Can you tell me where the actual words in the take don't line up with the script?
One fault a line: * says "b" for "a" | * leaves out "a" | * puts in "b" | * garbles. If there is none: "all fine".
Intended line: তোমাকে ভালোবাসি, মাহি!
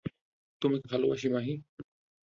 all fine